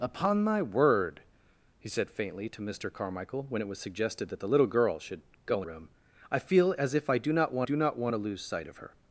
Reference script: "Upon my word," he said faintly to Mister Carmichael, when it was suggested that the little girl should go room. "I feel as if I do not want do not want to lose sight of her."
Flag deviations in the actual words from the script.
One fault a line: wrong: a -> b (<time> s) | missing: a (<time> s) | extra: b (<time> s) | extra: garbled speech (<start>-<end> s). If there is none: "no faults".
no faults